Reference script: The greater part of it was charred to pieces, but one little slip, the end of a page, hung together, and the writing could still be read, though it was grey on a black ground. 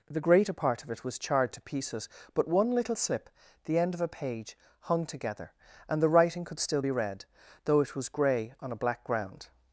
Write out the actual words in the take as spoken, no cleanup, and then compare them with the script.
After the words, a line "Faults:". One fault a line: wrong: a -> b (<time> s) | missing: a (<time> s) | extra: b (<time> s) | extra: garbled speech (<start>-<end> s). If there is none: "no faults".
The greater part of it was charred to pieces, but one little slip, the end of a page, hung together, and the writing could still be read, though it was grey on a black ground.
Faults:
no faults